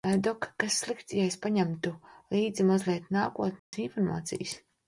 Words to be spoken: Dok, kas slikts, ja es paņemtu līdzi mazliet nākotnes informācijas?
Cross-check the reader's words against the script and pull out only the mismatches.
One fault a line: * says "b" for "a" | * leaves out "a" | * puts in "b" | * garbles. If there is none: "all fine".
all fine